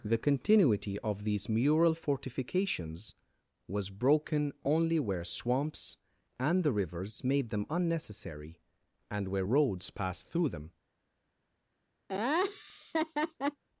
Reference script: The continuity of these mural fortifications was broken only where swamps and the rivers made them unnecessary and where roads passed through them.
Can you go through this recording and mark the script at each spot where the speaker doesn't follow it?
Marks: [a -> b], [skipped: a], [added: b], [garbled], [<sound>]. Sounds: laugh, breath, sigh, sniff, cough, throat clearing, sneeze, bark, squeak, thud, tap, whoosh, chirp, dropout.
The continuity of these mural fortifications was broken only where swamps and the rivers made them unnecessary and where roads passed through them. [laugh]